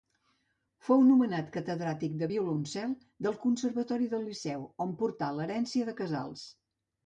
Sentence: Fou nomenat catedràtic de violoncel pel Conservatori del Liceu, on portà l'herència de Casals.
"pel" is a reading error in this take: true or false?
true